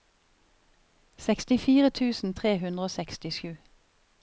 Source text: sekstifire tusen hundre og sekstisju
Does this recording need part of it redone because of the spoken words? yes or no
yes